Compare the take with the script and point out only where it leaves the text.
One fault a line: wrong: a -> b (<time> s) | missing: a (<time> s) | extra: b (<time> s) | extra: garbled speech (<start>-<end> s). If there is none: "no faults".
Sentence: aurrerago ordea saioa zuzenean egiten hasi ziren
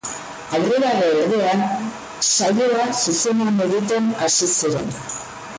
no faults